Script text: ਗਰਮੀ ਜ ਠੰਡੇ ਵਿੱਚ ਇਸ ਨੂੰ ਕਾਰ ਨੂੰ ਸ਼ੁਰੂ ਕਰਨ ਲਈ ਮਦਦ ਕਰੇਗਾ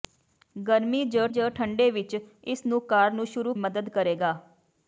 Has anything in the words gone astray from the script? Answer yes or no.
yes